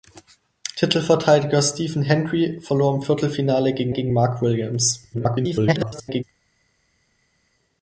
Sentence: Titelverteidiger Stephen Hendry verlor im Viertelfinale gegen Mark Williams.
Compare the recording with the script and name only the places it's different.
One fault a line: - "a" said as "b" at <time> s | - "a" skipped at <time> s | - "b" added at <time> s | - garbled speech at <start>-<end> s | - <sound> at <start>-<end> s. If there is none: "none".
- "gegen" added at 3.9 s
- garbled speech at 5.1-6.2 s